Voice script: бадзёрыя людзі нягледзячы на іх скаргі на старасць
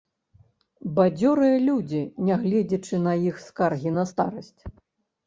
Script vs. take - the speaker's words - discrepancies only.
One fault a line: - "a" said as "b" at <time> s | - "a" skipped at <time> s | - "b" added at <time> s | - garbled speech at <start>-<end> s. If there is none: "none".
none